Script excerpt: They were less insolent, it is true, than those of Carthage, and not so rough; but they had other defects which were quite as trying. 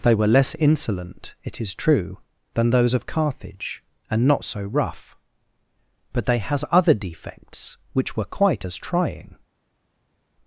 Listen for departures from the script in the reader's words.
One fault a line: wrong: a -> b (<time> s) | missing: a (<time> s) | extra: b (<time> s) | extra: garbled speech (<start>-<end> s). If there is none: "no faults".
wrong: had -> has (6.4 s)